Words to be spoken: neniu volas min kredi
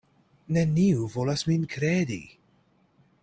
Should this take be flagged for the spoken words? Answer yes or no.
no